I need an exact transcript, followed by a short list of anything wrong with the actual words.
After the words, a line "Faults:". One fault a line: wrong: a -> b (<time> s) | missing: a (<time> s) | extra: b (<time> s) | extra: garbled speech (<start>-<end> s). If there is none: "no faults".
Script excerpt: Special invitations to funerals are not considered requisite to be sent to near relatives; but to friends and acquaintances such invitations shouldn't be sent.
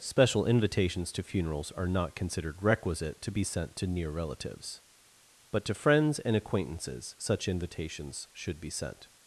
Special invitations to funerals are not considered requisite to be sent to near relatives; but to friends and acquaintances such invitations should be sent.
Faults:
wrong: shouldn't -> should (8.3 s)